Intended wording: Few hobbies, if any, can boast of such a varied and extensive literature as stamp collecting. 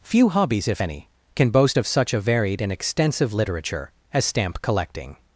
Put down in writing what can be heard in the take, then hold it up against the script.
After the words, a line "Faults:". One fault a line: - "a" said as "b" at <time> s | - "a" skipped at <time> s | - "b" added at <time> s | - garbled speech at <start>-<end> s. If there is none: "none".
Few hobbies, if any, can boast of such a varied and extensive literature as stamp collecting.
Faults:
none